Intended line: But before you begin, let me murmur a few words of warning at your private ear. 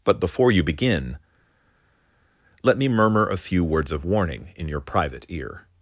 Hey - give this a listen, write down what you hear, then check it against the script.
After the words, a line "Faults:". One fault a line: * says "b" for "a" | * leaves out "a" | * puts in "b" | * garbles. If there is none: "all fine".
But before you begin, let me murmur a few words of warning in your private ear.
Faults:
* says "in" for "at"